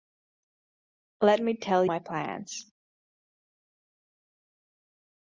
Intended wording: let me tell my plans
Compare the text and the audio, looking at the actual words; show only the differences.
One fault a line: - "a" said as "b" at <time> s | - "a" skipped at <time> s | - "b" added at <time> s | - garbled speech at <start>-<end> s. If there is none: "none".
none